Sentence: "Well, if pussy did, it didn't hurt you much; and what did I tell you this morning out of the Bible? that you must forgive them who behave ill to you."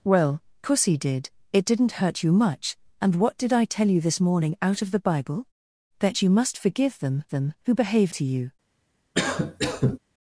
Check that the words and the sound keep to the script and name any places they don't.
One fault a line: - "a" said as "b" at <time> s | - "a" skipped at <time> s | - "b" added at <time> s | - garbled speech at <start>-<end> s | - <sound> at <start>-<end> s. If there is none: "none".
- "if" skipped at 0.4 s
- "them" added at 7.3 s
- "ill" skipped at 8.1 s
- cough at 9.1-10.0 s